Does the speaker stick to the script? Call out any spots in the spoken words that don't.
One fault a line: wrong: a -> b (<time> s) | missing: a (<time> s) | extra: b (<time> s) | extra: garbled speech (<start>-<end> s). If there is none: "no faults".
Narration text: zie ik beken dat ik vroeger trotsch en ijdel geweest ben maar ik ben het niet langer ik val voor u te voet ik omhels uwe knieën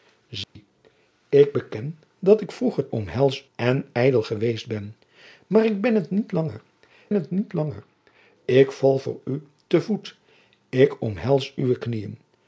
wrong: trotsch -> omhels (2.9 s)
extra: het niet langer (7.1 s)